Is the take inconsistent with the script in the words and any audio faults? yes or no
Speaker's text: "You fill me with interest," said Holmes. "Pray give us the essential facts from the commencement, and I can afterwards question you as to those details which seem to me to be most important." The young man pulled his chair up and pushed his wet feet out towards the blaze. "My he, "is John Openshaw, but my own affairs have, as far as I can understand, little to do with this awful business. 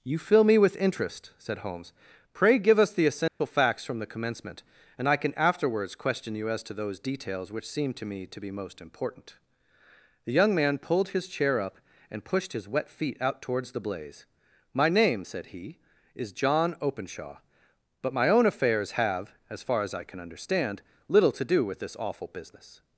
yes